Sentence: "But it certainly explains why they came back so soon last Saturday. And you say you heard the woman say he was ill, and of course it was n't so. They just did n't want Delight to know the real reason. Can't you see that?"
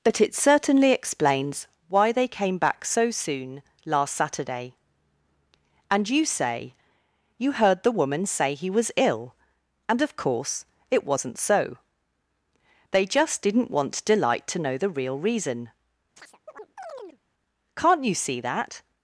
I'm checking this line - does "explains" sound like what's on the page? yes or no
yes